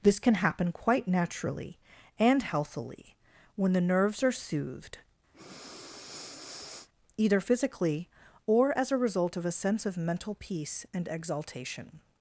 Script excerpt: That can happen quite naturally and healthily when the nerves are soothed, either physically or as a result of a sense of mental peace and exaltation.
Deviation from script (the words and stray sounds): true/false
true